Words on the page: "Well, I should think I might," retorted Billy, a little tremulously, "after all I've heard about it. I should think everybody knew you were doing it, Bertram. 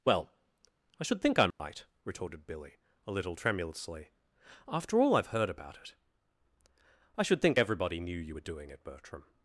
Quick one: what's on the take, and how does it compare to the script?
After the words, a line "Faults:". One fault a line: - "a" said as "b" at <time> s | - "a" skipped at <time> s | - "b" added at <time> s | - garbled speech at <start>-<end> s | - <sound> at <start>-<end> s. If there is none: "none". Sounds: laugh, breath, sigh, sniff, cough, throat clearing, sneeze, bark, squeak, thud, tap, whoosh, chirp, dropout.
"Well, I should think I might," retorted Billy, a little tremulously, "after all I've heard about it. I should think everybody knew you were doing it, Bertram.
Faults:
- dropout at 1.5-1.6 s